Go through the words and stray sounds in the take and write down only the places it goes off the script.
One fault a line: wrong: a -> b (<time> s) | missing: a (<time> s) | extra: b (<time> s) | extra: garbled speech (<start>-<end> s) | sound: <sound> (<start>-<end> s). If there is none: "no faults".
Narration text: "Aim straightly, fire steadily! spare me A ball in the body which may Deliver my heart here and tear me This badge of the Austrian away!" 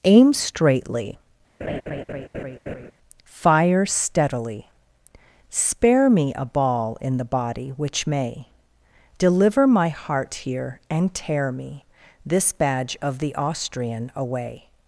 sound: laugh (1.6-2.9 s)